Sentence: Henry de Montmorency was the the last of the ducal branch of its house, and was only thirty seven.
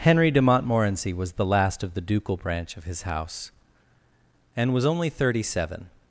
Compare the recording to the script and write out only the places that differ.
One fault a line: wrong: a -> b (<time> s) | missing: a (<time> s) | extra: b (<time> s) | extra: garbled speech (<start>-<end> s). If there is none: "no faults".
missing: the (1.4 s)
wrong: its -> his (2.9 s)